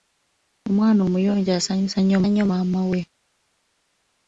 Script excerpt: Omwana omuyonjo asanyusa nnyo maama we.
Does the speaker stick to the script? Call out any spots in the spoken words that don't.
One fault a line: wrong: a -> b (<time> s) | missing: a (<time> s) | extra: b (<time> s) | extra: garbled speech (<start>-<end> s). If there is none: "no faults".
extra: nnyo (2.3 s)